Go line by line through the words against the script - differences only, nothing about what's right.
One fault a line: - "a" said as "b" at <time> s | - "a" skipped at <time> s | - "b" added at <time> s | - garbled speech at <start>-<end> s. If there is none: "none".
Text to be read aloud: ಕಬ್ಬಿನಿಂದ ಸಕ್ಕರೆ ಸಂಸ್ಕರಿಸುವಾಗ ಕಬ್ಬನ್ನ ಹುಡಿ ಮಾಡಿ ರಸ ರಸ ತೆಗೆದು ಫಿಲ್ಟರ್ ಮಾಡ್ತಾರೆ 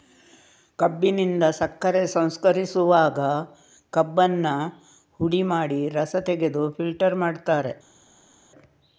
- "ರಸ" skipped at 6.2 s